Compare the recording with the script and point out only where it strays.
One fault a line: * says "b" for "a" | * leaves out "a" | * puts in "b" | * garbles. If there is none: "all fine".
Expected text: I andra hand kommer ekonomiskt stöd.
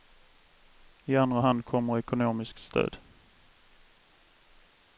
all fine